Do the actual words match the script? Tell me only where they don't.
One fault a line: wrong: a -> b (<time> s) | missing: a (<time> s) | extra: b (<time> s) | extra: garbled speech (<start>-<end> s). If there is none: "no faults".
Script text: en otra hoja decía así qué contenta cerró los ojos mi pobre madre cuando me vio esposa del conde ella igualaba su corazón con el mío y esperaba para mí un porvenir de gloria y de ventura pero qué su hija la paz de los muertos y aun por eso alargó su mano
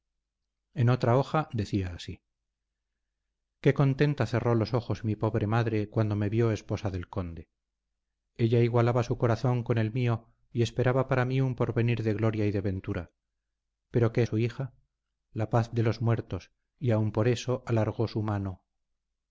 no faults